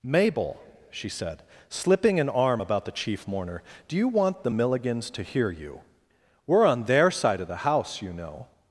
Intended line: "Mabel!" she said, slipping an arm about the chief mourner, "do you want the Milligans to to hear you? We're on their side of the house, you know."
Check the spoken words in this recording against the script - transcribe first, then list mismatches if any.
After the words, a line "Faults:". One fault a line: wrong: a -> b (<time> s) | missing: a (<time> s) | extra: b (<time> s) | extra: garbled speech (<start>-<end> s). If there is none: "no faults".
"Mabel!" she said, slipping an arm about the chief mourner, "do you want the Milligans to hear you? We're on their side of the house, you know."
Faults:
missing: to (5.2 s)